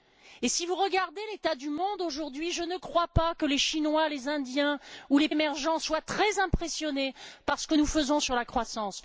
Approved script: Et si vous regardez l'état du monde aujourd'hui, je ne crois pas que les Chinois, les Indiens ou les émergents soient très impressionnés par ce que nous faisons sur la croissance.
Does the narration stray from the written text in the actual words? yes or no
no